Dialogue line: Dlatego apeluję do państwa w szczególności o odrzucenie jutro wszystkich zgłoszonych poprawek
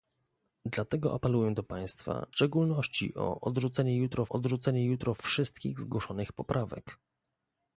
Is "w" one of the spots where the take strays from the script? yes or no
yes